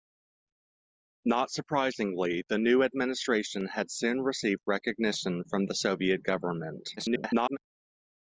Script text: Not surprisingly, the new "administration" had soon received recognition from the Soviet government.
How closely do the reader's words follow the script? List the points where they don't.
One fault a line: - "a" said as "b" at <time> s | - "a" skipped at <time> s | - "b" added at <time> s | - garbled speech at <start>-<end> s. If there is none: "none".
- garbled speech at 7.0-7.6 s